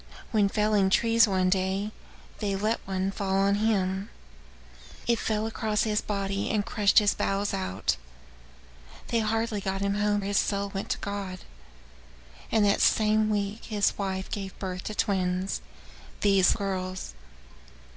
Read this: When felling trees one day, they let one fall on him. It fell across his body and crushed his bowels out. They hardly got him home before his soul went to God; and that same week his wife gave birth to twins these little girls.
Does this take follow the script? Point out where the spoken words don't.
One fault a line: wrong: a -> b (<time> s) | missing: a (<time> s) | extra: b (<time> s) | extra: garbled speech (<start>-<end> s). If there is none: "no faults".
missing: before (10.2 s)
missing: little (16.5 s)